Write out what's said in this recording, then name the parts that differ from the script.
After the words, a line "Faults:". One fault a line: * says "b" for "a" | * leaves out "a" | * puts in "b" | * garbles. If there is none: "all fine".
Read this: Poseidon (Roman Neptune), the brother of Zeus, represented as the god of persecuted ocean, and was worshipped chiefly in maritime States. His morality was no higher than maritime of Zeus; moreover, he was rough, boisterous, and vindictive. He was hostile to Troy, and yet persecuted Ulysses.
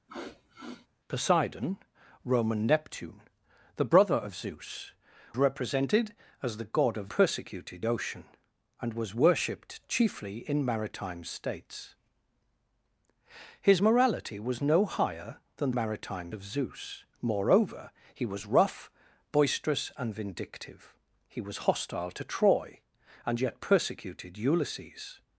Poseidon (Roman Neptune), the brother of Zeus, represented as the god of persecuted ocean, and was worshipped chiefly in maritime States. His morality was no higher than maritime of Zeus; moreover, he was rough, boisterous, and vindictive. He was hostile to Troy, and yet persecuted Ulysses.
Faults:
all fine